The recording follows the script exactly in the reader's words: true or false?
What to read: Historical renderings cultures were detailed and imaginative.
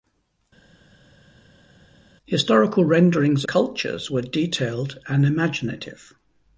true